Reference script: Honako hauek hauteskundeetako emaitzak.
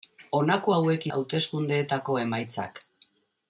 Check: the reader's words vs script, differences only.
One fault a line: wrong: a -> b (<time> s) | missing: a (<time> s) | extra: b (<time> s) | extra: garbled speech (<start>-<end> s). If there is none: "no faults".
no faults